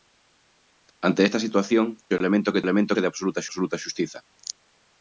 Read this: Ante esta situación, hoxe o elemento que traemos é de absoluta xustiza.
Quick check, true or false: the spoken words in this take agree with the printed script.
false